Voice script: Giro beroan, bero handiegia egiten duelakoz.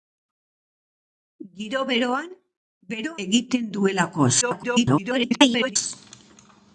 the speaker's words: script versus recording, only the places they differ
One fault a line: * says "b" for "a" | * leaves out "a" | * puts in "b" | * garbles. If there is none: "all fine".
* leaves out "handiegia"
* garbles